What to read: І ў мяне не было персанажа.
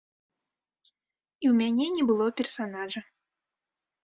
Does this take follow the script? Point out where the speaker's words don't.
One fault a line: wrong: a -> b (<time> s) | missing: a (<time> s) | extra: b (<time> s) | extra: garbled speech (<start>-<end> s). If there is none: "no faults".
no faults